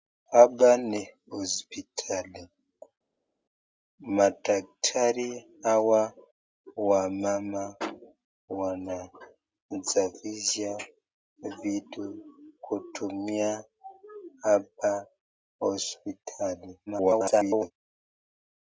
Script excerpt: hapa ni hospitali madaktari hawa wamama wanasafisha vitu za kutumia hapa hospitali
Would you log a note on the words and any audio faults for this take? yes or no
yes